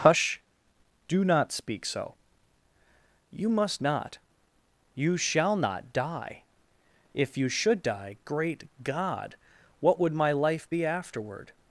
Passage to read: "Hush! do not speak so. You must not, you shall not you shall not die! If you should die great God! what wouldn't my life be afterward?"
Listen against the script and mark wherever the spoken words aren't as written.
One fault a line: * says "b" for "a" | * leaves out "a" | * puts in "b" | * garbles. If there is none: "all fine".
* leaves out "you shall not"
* says "would" for "wouldn't"